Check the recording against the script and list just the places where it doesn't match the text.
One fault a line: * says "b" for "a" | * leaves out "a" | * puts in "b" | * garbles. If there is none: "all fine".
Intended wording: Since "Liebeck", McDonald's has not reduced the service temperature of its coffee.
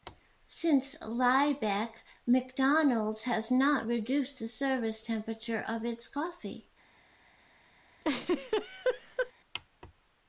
all fine